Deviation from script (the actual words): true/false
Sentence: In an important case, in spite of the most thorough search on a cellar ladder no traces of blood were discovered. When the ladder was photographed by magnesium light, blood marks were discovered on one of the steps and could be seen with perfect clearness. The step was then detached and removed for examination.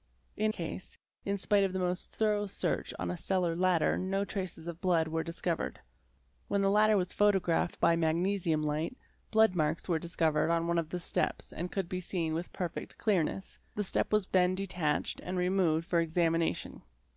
true